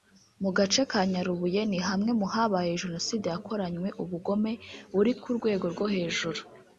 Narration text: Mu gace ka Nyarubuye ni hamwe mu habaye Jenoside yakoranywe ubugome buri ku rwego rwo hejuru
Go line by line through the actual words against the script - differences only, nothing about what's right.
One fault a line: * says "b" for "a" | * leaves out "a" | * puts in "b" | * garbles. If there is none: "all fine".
all fine